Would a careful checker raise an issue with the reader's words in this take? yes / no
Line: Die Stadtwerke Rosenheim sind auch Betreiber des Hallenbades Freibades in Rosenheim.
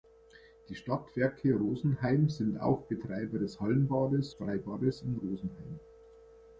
no